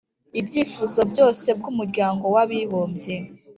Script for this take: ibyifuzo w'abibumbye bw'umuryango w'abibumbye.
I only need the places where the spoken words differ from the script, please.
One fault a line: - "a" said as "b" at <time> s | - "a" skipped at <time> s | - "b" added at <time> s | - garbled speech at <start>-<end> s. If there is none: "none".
- "w'abibumbye" said as "byose" at 1.1 s